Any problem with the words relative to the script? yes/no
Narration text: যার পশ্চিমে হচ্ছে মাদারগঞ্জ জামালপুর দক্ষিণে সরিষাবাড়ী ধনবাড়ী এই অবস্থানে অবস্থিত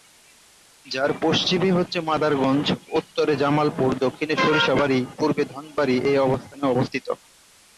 yes